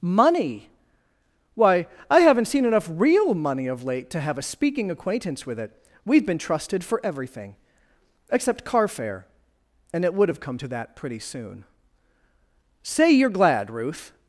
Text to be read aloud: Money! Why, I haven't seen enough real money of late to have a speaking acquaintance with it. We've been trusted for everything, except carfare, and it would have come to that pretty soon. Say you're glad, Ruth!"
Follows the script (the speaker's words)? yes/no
yes